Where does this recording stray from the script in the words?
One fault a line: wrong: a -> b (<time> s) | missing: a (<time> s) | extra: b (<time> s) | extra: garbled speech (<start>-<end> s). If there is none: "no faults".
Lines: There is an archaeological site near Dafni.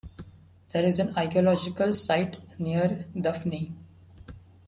no faults